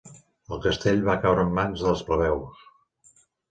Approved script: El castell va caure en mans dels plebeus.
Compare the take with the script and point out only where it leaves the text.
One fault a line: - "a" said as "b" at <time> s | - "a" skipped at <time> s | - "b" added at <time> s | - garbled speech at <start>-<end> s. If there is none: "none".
none